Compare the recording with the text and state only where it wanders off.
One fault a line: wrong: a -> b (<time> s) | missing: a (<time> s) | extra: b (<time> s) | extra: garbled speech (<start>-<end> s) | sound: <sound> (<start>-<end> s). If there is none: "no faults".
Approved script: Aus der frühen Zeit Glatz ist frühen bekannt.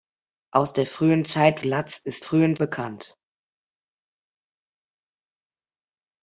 no faults